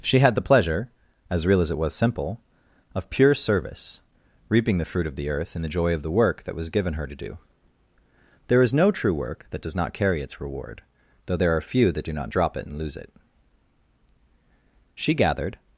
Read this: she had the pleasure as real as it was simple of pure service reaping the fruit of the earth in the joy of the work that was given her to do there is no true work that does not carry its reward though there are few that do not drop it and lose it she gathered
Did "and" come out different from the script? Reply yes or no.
no